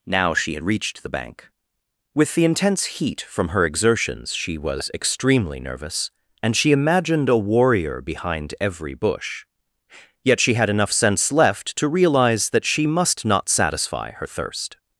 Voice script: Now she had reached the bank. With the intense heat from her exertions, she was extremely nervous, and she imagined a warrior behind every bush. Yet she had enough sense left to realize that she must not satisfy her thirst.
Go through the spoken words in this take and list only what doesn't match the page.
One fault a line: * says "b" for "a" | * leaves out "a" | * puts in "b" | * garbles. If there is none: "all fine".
all fine